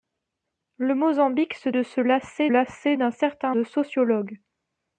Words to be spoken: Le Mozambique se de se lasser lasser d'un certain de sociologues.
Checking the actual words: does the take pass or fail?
pass